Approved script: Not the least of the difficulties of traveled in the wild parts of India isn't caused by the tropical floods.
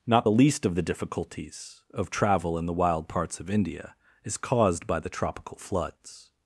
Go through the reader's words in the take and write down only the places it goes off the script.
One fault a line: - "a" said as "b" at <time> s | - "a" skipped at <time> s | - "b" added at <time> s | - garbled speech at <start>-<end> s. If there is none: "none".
- "traveled" said as "travel" at 2.1 s
- "isn't" said as "is" at 4.2 s